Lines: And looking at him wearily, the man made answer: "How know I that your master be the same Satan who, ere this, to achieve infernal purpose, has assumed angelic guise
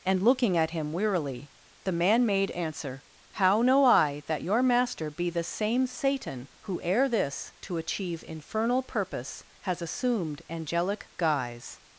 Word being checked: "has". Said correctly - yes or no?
yes